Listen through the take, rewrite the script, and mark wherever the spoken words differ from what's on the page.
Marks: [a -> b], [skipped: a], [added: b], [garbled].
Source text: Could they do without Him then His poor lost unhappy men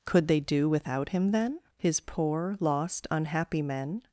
Could they do without Him then His poor lost unhappy men